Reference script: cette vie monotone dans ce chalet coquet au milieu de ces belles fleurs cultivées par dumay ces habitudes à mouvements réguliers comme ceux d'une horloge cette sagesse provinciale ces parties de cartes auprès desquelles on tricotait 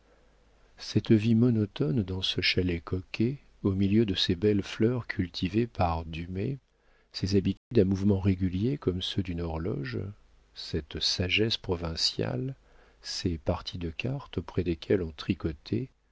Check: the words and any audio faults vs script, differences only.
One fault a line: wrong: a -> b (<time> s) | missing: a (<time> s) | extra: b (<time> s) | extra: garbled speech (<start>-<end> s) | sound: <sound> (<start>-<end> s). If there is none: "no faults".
sound: dropout (7.6-7.7 s)